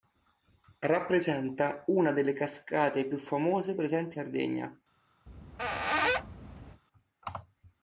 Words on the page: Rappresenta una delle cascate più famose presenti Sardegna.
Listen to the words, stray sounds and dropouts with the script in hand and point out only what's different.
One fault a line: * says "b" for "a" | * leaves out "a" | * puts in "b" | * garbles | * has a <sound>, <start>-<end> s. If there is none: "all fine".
* has a squeak, 5.3-6.8 s